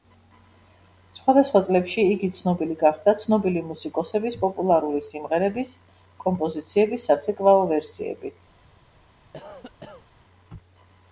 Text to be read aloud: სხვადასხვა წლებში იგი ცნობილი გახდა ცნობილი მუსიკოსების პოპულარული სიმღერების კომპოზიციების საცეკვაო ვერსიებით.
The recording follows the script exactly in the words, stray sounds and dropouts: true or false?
false